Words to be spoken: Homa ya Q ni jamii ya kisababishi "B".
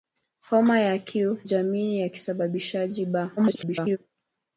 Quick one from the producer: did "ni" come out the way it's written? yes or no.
no